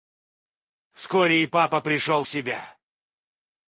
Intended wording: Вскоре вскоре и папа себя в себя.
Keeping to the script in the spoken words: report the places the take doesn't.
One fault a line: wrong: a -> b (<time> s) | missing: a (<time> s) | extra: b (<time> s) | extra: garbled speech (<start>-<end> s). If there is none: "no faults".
missing: вскоре (1.4 s)
wrong: себя -> пришел (1.8 s)